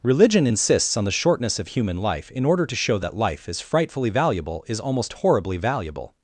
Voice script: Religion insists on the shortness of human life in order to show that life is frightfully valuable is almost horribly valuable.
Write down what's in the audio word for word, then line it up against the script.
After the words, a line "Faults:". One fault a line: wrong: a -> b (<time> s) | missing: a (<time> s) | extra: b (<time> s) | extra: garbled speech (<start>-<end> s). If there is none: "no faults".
Religion insists on the shortness of human life in order to show that life is frightfully valuable is almost horribly valuable.
Faults:
no faults